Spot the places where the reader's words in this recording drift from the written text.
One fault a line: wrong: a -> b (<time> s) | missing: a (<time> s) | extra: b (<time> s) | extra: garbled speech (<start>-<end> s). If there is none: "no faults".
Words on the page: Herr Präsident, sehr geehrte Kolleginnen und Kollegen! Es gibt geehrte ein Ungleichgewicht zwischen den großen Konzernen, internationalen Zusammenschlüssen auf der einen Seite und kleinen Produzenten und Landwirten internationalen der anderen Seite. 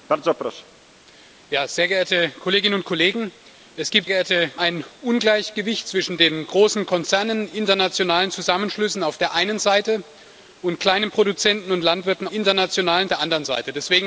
no faults